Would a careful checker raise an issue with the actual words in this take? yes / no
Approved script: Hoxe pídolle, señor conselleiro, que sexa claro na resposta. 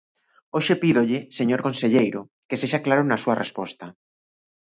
yes